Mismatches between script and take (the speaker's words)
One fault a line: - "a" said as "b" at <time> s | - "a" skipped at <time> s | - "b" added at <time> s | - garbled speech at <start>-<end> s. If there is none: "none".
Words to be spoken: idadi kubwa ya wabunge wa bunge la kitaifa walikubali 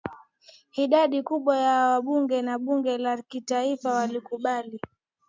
none